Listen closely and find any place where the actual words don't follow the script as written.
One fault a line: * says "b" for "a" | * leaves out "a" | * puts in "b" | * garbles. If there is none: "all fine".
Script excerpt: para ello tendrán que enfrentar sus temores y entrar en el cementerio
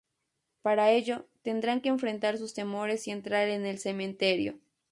all fine